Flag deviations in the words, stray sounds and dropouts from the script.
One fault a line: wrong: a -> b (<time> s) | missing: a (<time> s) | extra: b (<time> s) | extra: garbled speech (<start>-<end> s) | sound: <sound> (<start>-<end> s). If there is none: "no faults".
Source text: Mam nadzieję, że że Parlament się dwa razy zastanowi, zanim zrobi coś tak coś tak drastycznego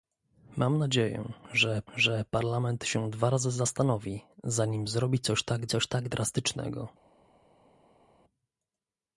no faults